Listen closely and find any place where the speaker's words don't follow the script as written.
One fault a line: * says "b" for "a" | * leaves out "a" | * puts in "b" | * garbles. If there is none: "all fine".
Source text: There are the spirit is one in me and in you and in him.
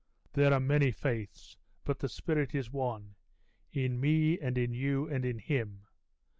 * puts in "many faiths but"